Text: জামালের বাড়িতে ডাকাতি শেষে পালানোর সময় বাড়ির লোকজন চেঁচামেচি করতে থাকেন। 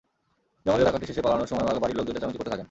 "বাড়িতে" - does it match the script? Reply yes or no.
no